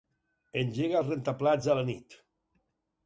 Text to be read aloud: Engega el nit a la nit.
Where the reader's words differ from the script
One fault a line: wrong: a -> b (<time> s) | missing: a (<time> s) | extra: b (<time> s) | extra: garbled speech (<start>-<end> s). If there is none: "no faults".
wrong: nit -> rentaplats (1.1 s)